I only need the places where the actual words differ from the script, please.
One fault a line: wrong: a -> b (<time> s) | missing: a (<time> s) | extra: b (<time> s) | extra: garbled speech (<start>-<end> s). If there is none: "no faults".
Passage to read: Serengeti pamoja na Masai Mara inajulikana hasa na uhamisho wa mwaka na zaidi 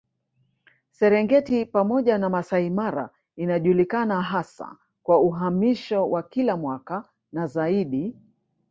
wrong: na -> kwa (5.0 s)
extra: kila (6.2 s)